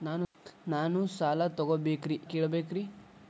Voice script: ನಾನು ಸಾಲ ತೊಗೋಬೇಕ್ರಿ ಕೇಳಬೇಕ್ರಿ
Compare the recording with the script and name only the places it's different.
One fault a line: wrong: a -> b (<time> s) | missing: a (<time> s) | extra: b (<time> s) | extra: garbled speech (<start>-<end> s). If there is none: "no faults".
no faults